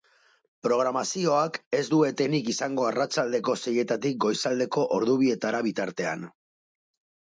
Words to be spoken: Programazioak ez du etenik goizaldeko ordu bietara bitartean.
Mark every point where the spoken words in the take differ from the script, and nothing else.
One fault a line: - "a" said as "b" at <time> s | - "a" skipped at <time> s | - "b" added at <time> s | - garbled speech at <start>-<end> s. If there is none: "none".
- "izango arratsaldeko seietatik" added at 2.6 s